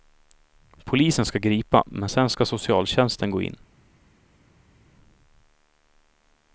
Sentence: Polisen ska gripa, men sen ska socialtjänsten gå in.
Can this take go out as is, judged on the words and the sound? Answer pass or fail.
pass